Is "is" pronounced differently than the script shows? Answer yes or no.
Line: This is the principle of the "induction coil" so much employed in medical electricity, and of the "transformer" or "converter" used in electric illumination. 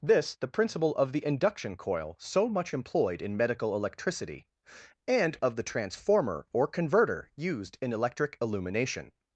yes